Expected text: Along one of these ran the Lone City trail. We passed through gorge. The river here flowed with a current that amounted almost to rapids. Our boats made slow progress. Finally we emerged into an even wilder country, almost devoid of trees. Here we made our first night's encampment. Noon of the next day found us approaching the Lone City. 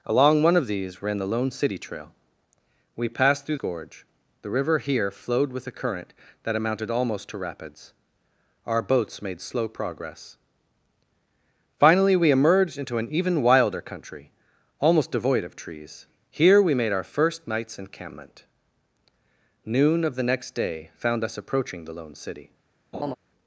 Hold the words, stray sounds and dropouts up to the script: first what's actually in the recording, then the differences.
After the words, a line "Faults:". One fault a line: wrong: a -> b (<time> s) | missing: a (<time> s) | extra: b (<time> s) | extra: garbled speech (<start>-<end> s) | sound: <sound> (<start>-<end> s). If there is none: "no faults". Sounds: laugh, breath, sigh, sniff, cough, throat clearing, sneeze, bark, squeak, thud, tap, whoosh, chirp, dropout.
Along one of these ran the Lone City trail. We passed through gorge. The river here flowed with a current that amounted almost to rapids. Our boats made slow progress. Finally we emerged into an even wilder country, almost devoid of trees. Here we made our first night's encampment. Noon of the next day found us approaching the Lone City.
Faults:
sound: laugh (22.9-23.2 s)